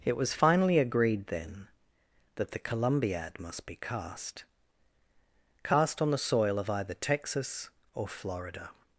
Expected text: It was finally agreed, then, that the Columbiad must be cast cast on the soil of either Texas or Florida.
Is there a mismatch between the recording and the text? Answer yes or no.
no